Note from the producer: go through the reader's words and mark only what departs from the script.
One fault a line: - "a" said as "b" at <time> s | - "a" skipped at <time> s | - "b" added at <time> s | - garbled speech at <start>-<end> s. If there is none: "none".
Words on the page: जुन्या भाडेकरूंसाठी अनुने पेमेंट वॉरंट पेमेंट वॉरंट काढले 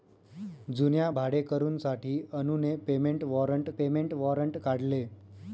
none